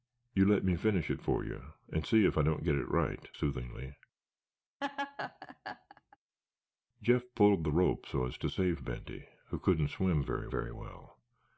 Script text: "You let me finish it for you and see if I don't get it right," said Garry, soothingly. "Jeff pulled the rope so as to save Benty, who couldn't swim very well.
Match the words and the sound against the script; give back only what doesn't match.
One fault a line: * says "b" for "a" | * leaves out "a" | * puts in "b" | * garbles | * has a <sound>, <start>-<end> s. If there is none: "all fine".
* leaves out "said Garry"
* has a laugh, 4.8-6.2 s
* puts in "very"